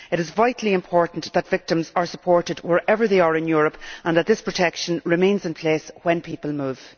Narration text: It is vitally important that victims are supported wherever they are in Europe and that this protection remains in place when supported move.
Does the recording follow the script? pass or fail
fail